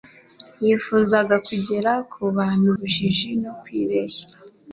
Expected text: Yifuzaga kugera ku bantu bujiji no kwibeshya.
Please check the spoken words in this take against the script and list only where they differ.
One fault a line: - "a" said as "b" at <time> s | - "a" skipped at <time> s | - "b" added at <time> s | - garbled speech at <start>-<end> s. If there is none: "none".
none